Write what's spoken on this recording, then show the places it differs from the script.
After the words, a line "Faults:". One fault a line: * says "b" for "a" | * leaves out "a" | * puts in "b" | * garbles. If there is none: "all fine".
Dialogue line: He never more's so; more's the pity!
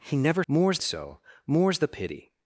He never more's so; more's the pity!
Faults:
all fine